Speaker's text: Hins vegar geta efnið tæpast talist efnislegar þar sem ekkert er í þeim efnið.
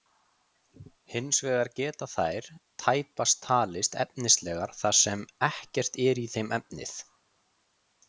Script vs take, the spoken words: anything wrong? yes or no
yes